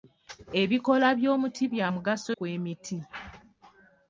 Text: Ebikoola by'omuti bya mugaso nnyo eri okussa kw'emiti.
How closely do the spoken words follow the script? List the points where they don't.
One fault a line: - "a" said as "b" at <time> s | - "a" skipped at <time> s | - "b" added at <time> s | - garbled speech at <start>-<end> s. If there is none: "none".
- "nnyo eri okussa" skipped at 2.3 s